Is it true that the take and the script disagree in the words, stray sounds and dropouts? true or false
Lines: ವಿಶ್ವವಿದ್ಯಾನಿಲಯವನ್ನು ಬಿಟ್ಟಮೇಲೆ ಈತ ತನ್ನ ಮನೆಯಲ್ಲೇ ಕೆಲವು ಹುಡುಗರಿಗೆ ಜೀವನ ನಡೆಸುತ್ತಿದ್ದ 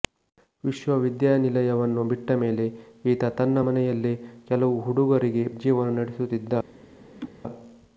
true